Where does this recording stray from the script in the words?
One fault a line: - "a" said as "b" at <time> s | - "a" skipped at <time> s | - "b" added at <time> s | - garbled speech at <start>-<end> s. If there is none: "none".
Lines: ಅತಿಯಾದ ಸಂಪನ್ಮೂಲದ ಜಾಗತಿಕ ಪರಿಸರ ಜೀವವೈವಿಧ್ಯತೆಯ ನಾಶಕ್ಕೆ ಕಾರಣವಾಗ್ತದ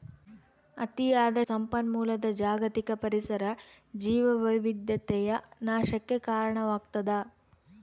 none